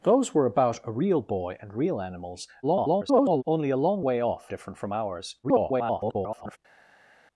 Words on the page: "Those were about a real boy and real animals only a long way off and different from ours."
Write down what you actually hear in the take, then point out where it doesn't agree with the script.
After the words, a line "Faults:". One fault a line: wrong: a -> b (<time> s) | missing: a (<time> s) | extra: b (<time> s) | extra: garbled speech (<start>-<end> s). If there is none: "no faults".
"Those were about a real boy and real animals [garbled] only a long way off different from ours." [garbled]
Faults:
extra: garbled speech (2.6-3.4 s)
missing: and (4.5 s)
extra: garbled speech (5.4-6.6 s)